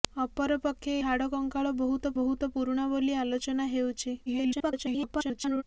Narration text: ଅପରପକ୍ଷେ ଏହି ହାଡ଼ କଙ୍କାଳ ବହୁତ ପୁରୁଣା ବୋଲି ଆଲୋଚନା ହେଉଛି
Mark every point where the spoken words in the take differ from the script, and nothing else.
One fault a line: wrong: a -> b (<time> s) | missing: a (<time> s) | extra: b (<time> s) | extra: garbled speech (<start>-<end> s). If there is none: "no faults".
missing: ଏହି (0.9 s)
extra: ବହୁତ (2.2 s)
extra: garbled speech (4.3-5.6 s)